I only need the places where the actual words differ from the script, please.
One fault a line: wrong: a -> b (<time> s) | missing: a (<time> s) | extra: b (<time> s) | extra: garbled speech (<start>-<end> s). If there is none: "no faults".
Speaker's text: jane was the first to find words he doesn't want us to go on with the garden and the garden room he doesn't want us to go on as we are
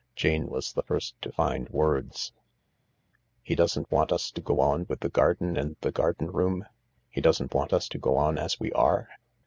no faults